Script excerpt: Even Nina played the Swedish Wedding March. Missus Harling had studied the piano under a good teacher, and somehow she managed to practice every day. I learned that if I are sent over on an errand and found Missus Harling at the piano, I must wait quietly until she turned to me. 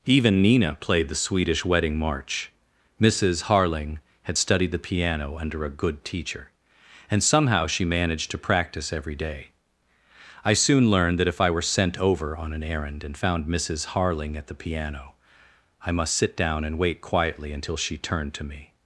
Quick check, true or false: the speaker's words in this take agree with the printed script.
false